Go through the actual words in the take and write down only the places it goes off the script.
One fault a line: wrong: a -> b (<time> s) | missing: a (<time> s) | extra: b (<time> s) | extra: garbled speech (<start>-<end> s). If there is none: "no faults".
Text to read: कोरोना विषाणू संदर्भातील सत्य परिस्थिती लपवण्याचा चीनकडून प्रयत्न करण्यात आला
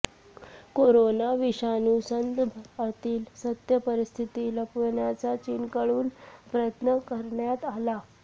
no faults